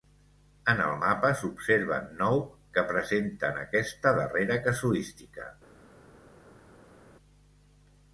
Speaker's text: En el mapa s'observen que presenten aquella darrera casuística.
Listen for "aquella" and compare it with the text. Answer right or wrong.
wrong